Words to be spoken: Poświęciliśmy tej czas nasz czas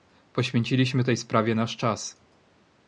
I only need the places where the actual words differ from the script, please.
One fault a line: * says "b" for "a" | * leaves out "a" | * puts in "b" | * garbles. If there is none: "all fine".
* says "sprawie" for "czas"